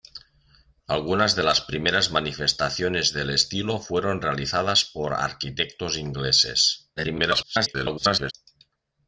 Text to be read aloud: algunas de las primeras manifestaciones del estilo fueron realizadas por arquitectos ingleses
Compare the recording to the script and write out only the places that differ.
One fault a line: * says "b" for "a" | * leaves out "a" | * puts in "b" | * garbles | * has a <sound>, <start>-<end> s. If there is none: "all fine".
* garbles